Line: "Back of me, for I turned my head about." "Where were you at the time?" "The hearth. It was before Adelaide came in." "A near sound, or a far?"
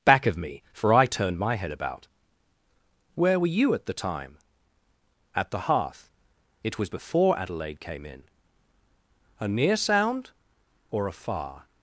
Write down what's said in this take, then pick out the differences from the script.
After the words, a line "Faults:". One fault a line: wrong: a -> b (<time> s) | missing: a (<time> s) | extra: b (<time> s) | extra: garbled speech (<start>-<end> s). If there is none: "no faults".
"Back of me, for I turned my head about." "Where were you at the time?" "At the hearth. It was before Adelaide came in." "A near sound, or a far?"
Faults:
extra: At (5.3 s)